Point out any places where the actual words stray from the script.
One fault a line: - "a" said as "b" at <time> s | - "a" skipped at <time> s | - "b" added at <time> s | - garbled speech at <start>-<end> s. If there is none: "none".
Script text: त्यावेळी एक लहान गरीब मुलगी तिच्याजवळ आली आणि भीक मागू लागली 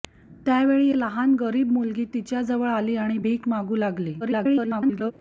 - "एक" skipped at 0.9 s
- garbled speech at 4.2-5.1 s